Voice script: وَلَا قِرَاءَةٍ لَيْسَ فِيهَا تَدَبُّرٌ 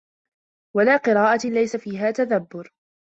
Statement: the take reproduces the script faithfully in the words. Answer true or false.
true